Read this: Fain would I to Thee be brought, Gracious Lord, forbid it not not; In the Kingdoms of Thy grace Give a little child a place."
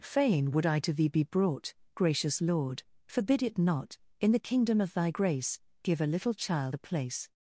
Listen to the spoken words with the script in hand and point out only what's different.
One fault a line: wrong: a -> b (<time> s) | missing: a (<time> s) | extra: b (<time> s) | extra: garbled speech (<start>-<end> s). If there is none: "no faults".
missing: not (4.0 s)
wrong: Kingdoms -> Kingdom (4.4 s)